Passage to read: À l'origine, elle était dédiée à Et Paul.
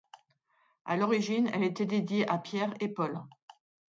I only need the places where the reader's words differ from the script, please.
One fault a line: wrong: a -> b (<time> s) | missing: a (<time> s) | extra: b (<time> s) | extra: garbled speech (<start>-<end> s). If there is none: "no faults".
extra: Pierre (2.4 s)